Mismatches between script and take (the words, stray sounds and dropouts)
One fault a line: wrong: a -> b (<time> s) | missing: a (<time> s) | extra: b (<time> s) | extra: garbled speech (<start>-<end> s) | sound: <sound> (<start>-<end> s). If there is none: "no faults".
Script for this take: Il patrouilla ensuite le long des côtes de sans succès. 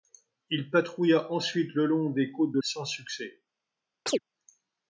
sound: chirp (4.1-4.2 s)